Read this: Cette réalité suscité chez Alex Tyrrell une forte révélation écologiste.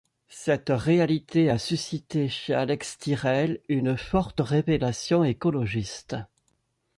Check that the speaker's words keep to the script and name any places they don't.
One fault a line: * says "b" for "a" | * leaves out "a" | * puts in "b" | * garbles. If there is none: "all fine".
* puts in "a"